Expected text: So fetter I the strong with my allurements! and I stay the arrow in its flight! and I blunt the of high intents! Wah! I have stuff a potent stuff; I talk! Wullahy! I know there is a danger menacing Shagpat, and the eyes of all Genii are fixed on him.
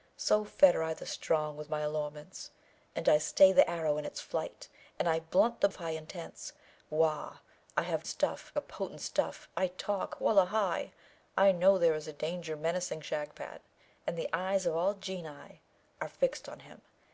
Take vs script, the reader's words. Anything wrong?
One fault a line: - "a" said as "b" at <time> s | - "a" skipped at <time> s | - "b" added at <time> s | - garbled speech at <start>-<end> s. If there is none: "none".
none